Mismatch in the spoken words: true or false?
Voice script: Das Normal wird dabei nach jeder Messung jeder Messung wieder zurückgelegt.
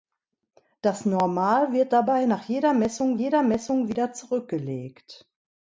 false